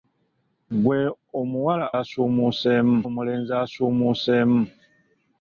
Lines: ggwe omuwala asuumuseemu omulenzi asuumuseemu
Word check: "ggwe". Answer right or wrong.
right